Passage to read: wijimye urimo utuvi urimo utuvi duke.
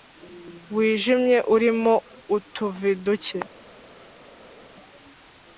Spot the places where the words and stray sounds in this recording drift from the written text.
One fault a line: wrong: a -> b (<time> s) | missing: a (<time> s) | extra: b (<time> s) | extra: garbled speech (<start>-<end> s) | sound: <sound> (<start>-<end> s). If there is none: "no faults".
missing: urimo utuvi (2.9 s)